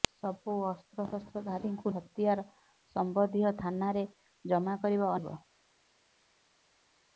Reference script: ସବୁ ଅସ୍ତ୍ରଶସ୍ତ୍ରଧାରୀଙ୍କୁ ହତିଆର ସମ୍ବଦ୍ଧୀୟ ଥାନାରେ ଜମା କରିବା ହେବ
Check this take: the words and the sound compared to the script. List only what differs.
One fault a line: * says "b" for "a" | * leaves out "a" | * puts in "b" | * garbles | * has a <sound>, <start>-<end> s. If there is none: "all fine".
all fine